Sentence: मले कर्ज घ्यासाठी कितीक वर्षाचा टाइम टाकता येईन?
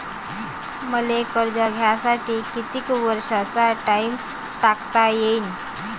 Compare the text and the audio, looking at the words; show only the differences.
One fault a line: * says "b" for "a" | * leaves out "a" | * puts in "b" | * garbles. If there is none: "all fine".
all fine